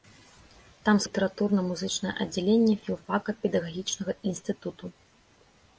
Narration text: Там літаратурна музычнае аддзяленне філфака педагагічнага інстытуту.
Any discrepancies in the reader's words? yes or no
no